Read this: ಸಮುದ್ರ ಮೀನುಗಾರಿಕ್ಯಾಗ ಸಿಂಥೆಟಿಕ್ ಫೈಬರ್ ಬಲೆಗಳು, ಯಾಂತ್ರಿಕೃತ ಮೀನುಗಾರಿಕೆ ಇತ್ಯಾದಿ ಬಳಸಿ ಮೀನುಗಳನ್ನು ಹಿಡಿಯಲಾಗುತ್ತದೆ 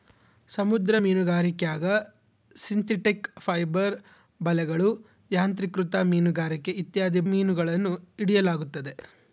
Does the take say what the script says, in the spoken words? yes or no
no